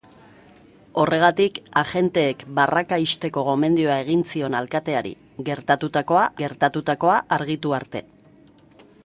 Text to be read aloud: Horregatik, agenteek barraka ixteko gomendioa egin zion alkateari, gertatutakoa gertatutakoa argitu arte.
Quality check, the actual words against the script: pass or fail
pass